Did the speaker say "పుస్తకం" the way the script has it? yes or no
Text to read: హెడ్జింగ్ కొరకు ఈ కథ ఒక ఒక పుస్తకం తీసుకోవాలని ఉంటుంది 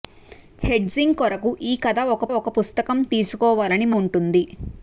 yes